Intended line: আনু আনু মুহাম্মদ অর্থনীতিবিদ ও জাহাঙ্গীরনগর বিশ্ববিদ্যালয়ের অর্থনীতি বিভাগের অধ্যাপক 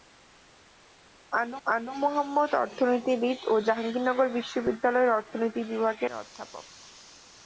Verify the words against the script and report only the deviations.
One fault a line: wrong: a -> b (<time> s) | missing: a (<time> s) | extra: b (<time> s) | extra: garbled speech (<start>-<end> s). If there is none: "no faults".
no faults